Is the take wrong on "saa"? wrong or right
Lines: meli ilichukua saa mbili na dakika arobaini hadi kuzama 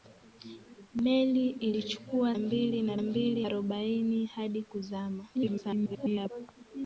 wrong